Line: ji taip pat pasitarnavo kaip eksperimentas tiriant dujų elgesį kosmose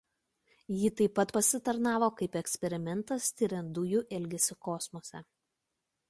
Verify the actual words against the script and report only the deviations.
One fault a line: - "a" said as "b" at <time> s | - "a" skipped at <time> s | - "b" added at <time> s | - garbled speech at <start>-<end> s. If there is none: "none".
none